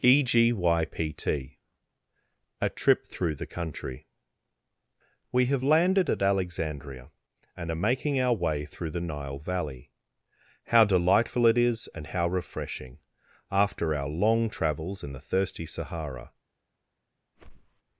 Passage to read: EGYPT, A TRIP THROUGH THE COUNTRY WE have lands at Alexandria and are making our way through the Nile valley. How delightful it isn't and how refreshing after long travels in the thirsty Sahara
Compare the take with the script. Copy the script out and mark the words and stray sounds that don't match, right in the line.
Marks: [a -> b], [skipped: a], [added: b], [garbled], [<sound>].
EGYPT, A TRIP THROUGH THE COUNTRY WE have [lands -> landed] at Alexandria and are making our way through the Nile valley. How delightful it [isn't -> is] and how refreshing after [added: our] long travels in the thirsty Sahara [whoosh]